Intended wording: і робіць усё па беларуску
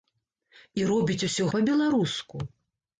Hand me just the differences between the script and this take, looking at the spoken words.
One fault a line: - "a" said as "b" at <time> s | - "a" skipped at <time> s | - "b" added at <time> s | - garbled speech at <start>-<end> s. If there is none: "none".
none